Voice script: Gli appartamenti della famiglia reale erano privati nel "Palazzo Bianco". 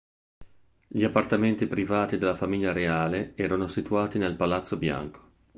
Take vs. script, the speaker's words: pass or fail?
fail